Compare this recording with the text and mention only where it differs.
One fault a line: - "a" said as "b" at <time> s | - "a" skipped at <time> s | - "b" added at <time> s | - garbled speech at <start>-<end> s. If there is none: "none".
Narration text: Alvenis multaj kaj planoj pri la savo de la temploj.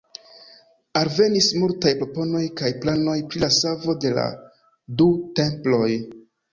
- "proponoj" added at 2.0 s
- "du" added at 5.0 s